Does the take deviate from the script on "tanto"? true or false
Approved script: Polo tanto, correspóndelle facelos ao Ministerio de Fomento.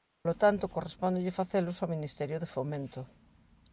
false